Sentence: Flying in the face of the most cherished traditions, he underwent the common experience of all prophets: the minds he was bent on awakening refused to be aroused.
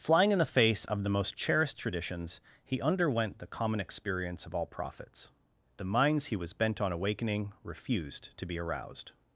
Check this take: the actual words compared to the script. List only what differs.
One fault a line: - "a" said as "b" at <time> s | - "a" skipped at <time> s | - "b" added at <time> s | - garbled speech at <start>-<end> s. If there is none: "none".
none